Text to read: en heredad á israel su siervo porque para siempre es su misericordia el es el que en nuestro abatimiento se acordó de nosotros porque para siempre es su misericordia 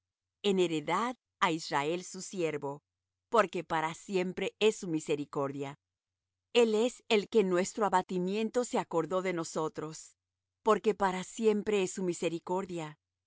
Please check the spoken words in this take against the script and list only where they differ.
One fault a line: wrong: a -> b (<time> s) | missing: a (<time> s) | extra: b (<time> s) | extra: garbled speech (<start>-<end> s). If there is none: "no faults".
no faults